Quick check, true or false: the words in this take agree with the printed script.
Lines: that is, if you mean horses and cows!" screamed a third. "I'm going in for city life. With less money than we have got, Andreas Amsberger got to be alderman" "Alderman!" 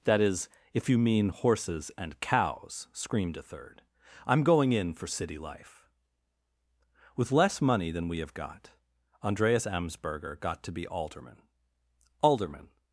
true